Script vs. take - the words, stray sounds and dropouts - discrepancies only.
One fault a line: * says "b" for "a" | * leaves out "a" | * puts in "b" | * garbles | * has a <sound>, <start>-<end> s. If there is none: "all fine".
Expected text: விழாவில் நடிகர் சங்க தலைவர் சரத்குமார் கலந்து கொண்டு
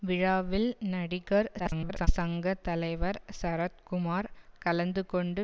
* garbles